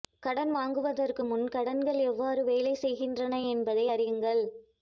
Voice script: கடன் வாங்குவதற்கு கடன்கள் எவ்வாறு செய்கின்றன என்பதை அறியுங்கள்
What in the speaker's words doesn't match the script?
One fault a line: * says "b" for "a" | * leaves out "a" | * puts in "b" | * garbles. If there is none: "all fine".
* puts in "முன்"
* puts in "வேலை"